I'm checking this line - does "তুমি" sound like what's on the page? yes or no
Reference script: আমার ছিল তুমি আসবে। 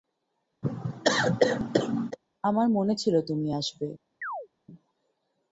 yes